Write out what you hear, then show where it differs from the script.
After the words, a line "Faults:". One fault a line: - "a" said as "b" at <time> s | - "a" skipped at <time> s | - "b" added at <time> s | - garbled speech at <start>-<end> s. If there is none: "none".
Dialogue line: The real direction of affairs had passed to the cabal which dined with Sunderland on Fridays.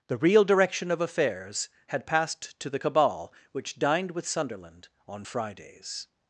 The real direction of affairs had passed to the cabal which dined with Sunderland on Fridays.
Faults:
none